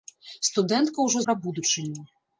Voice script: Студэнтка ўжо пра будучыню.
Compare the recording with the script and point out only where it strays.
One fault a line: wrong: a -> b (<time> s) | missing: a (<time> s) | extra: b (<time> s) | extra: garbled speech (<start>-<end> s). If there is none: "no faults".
no faults